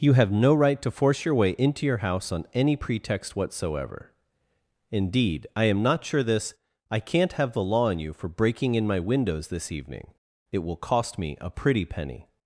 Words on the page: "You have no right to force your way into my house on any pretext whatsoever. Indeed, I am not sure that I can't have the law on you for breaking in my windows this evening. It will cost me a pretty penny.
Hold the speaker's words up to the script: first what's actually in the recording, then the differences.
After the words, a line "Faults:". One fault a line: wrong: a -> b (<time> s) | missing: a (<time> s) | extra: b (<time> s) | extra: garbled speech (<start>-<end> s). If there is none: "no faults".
"You have no right to force your way into your house on any pretext whatsoever. Indeed, I am not sure this I can't have the law on you for breaking in my windows this evening. It will cost me a pretty penny.
Faults:
wrong: my -> your (1.9 s)
wrong: that -> this (6.2 s)